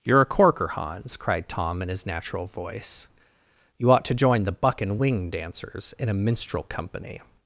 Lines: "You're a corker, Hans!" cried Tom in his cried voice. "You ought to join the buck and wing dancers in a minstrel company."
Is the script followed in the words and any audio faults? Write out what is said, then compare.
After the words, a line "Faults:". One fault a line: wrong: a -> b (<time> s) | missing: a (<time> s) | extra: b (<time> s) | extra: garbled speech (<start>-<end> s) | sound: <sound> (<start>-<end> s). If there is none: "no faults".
"You're a corker, Hans!" cried Tom in his natural voice. "You ought to join the buck and wing dancers in a minstrel company."
Faults:
wrong: cried -> natural (2.1 s)